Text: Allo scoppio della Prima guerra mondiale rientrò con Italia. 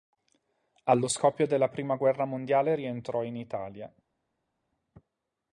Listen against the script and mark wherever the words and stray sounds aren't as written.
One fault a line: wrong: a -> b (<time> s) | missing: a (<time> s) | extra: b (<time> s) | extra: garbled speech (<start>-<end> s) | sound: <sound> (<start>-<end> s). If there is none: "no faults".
wrong: con -> in (3.2 s)